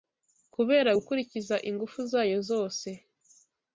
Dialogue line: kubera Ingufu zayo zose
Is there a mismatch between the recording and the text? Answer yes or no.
yes